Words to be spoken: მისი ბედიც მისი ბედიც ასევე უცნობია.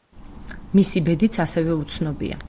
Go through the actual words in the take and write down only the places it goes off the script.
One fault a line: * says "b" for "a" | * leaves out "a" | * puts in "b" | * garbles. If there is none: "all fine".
* leaves out "მისი ბედიც"